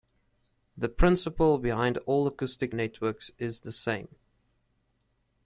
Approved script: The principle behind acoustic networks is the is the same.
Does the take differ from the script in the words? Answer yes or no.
yes